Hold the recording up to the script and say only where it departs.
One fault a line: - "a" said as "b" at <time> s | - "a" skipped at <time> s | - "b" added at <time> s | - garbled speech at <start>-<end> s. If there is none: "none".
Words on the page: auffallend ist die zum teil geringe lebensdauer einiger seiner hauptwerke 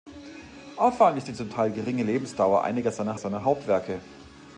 - "seiner" added at 3.2 s